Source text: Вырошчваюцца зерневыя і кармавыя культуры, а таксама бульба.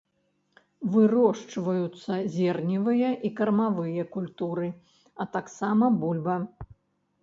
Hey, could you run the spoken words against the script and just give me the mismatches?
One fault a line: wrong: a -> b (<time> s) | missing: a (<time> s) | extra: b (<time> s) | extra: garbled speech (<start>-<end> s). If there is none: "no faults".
no faults